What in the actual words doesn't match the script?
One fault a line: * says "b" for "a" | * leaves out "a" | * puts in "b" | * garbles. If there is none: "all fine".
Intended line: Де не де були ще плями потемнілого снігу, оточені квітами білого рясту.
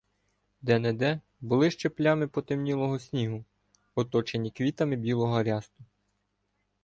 all fine